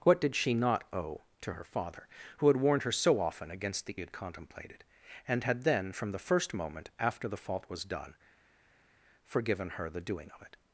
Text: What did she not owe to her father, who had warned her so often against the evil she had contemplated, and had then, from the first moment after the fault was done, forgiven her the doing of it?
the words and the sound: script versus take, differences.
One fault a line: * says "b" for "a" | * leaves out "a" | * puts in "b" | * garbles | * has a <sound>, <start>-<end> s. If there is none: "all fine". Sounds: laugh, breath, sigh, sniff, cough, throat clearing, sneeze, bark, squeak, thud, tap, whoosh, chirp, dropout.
* leaves out "evil she"